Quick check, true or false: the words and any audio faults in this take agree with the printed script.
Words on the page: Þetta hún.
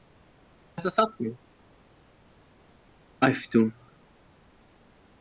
false